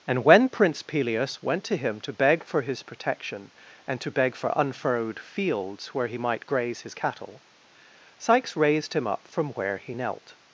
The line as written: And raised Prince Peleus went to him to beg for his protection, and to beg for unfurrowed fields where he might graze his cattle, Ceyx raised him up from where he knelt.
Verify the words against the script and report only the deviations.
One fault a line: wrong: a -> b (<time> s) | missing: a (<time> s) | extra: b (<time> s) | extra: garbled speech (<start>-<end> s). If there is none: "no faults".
wrong: raised -> when (0.2 s)